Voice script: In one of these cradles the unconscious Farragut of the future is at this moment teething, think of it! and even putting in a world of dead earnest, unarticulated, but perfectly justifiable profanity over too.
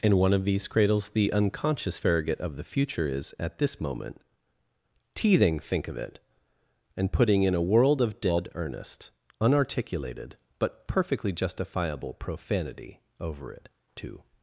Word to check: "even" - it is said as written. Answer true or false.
false